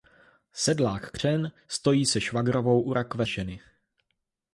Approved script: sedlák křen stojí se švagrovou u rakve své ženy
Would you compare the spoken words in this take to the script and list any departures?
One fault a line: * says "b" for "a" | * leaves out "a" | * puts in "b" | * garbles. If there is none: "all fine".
* leaves out "své"